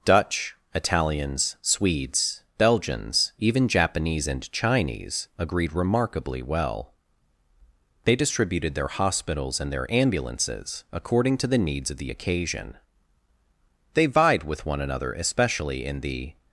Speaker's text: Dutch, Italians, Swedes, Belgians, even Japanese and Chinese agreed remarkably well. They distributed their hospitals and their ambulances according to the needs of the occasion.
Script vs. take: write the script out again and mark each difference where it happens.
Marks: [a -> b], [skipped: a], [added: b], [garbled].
Dutch, Italians, Swedes, Belgians, even Japanese and Chinese agreed remarkably well. They distributed their hospitals and their ambulances according to the needs of the occasion. [added: They vied with one another especially in the]